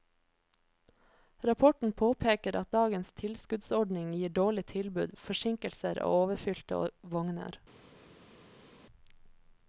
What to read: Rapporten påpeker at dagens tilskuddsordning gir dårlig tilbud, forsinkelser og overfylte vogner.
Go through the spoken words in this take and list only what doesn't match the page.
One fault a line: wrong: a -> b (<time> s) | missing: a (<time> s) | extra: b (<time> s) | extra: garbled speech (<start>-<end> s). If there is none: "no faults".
no faults